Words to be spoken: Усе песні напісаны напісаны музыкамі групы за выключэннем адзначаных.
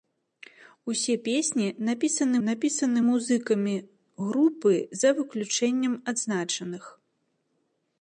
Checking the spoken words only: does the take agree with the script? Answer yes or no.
yes